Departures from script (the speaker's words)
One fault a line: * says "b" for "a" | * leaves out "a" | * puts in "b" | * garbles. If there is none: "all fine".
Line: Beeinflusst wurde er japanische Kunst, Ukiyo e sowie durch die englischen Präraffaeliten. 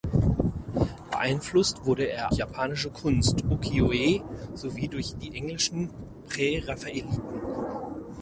all fine